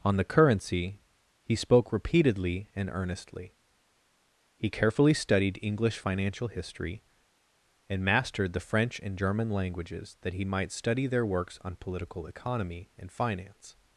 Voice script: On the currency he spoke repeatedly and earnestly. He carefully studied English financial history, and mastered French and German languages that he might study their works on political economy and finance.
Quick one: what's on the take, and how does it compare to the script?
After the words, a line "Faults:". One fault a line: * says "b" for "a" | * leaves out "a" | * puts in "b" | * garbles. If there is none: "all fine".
On the currency he spoke repeatedly and earnestly. He carefully studied English financial history, and mastered the French and German languages that he might study their works on political economy and finance.
Faults:
* puts in "the"